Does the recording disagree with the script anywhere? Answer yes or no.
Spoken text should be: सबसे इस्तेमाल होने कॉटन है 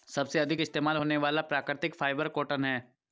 yes